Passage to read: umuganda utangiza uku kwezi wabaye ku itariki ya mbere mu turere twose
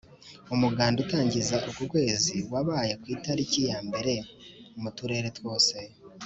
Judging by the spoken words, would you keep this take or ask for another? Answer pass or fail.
pass